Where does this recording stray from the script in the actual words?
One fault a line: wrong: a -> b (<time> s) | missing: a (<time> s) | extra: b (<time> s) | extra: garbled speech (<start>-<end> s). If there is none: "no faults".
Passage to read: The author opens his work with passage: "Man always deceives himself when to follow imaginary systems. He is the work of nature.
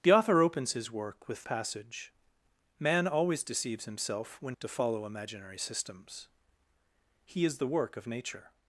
no faults